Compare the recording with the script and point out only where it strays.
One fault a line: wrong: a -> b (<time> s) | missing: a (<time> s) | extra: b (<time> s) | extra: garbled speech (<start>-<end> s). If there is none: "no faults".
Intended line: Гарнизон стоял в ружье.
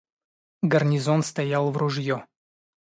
no faults